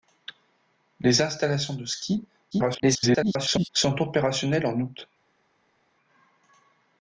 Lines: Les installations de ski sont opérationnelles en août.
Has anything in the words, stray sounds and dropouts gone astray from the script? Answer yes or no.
yes